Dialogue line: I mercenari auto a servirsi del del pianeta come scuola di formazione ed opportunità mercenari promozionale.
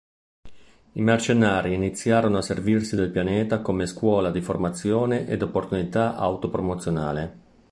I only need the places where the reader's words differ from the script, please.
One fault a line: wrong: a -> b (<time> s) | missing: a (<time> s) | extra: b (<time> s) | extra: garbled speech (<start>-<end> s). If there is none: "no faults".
wrong: auto -> iniziarono (1.8 s)
missing: del (3.1 s)
wrong: mercenari -> auto (6.1 s)